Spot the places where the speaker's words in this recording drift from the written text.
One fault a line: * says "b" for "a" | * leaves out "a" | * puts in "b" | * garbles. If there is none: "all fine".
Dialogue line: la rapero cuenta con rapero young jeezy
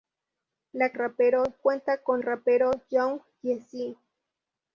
all fine